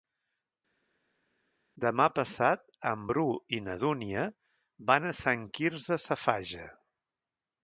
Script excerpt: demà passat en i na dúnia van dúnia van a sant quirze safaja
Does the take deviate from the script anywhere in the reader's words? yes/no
yes